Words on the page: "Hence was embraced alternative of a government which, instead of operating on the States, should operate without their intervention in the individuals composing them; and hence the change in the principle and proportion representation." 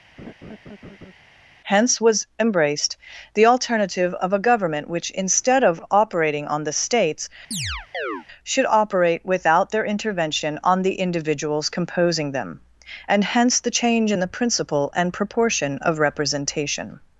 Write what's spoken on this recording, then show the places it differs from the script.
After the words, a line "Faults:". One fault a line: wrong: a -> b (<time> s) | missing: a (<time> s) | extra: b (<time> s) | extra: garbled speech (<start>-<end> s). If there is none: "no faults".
"Hence was embraced the alternative of a government which, instead of operating on the States, should operate without their intervention on the individuals composing them; and hence the change in the principle and proportion of representation."
Faults:
extra: the (3.4 s)
wrong: in -> on (10.6 s)
extra: of (15.8 s)